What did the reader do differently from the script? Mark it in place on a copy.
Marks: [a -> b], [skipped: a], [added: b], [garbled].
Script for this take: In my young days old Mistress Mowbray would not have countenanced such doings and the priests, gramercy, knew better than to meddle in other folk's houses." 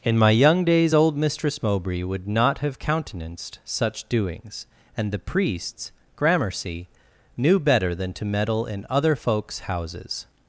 In my young days old Mistress Mowbray would not have countenanced such doings and the priests, gramercy, knew better than to meddle in other folk's houses."